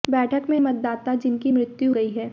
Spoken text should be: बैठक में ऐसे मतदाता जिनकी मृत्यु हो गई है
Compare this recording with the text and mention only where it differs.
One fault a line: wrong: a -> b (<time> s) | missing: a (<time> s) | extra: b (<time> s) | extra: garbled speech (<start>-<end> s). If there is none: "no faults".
missing: ऐसे (0.6 s)
missing: हो (1.9 s)